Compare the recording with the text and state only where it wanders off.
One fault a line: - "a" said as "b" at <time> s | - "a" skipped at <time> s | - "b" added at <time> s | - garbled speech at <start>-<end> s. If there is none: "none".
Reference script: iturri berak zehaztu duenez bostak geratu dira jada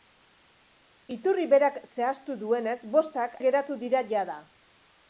none